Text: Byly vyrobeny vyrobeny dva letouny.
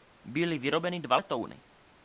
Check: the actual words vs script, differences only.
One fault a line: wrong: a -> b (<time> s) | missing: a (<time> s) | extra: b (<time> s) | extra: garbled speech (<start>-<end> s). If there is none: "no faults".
missing: vyrobeny (1.0 s)